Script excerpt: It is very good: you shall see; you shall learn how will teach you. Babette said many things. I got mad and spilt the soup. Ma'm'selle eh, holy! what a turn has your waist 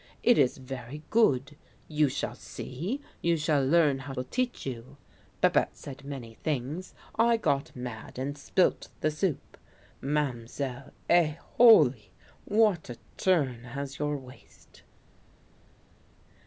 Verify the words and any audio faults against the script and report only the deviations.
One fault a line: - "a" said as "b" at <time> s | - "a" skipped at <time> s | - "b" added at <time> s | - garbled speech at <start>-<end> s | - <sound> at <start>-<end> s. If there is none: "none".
none